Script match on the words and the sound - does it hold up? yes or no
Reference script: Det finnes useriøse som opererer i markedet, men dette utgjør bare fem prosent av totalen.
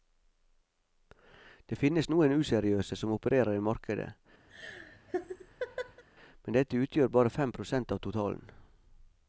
no